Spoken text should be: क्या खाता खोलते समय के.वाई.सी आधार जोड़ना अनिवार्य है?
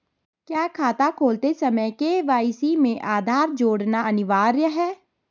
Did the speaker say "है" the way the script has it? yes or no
yes